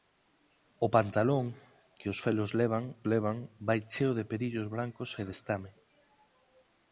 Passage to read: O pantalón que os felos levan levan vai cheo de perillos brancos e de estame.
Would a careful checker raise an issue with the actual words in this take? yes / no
no